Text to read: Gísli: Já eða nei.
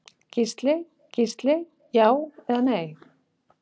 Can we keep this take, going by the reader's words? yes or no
no